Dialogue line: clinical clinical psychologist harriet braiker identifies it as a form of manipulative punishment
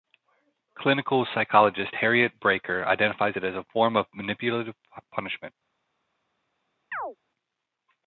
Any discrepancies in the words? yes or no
yes